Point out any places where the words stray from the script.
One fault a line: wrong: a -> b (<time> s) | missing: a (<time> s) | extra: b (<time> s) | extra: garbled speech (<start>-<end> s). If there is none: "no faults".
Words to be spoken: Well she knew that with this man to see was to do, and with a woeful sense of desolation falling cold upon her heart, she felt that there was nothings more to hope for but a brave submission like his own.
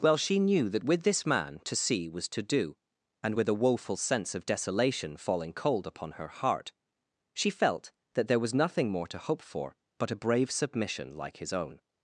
wrong: nothings -> nothing (8.5 s)